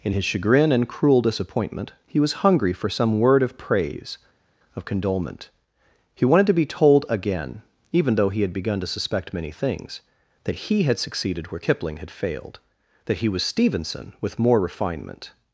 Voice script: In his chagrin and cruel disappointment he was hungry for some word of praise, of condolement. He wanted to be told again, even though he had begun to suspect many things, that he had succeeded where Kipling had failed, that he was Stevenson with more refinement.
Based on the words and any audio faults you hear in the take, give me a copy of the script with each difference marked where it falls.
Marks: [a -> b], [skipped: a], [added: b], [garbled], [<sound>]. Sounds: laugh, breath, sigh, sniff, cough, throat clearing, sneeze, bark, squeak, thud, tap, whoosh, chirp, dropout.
In his chagrin and cruel disappointment he was hungry for some word of praise, of condolement. He wanted to be told again, even though he had begun to suspect many things, that he had succeeded where Kipling had failed, that he was Stevenson with more refinement.